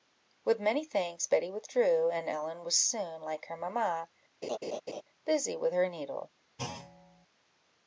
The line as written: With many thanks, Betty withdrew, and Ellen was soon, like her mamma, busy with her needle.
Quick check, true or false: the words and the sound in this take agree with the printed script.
false